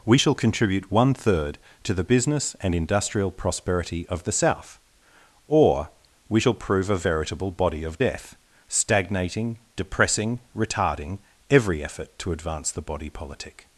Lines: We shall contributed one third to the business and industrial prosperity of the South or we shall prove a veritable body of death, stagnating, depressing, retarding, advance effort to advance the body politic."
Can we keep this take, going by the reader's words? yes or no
no